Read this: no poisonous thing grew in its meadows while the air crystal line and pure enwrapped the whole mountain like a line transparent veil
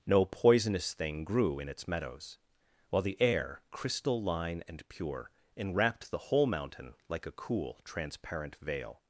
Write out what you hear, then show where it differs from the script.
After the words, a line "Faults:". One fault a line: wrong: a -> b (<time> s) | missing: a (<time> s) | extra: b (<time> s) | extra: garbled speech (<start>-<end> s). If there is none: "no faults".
no poisonous thing grew in its meadows while the air crystal line and pure enwrapped the whole mountain like a cool transparent veil
Faults:
wrong: line -> cool (7.3 s)